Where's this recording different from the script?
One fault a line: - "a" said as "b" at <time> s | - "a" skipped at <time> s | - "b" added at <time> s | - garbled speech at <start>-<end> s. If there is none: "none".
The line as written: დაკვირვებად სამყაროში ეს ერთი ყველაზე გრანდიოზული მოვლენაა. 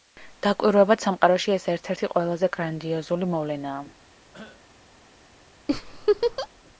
- "ერთ" added at 1.8 s